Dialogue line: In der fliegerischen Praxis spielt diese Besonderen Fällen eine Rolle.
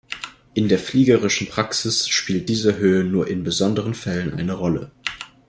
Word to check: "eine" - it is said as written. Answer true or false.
true